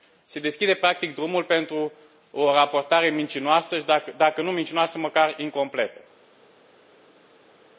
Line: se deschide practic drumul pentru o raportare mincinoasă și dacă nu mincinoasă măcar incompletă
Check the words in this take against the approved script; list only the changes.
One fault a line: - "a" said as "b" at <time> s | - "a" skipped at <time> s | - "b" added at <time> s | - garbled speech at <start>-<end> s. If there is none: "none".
none